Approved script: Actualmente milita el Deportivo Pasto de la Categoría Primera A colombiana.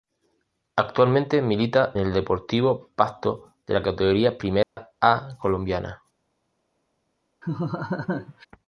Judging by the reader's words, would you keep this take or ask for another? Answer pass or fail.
pass